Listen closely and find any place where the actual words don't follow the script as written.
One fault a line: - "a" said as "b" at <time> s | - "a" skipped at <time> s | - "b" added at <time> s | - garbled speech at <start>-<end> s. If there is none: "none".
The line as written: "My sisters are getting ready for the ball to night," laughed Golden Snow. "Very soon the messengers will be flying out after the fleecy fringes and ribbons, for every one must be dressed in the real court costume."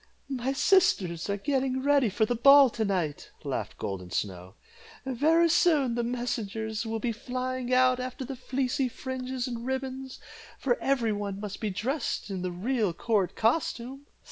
none